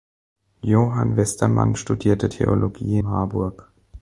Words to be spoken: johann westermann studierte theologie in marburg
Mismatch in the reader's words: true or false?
true